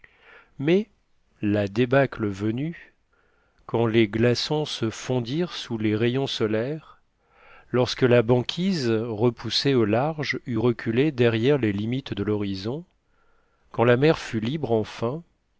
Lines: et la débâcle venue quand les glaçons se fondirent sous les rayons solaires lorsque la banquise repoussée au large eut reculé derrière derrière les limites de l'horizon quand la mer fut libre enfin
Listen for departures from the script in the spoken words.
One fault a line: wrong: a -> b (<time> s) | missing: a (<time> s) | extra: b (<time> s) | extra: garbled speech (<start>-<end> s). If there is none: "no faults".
wrong: et -> mais (0.6 s)
missing: derrière (11.6 s)